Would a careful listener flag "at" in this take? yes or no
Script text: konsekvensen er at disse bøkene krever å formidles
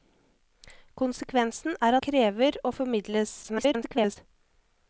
yes